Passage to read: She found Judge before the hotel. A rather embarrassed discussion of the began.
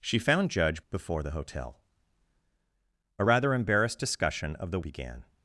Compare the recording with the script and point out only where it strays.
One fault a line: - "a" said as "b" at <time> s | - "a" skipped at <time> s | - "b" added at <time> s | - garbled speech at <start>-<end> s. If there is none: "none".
none